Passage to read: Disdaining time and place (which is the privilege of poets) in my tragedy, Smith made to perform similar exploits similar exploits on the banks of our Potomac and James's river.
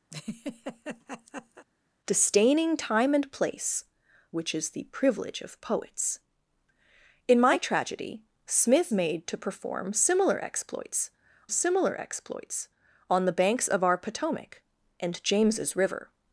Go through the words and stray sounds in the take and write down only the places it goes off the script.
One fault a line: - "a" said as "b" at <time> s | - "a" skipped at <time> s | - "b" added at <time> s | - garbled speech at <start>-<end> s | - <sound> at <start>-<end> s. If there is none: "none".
- laugh at 0.1-1.7 s